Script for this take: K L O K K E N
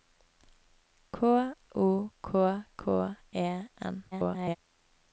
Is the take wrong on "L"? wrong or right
wrong